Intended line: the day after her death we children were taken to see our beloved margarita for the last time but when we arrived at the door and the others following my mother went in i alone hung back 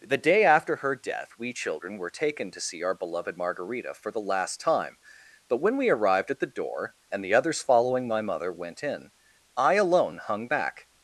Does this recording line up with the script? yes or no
yes